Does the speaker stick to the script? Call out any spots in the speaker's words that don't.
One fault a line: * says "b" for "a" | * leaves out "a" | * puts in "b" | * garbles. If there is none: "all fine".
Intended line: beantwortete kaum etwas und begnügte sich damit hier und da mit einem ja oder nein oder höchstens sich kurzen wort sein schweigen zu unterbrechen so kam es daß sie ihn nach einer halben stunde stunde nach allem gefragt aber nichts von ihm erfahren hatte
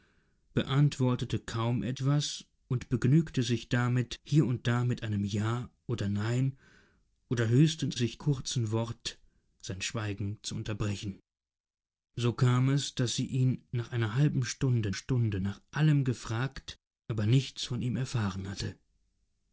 all fine